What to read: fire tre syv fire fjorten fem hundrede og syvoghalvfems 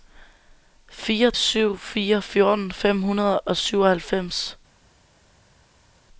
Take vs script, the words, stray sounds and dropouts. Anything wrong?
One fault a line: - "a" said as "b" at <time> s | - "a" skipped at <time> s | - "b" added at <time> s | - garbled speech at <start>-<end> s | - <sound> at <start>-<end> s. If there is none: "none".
- "tre" skipped at 1.3 s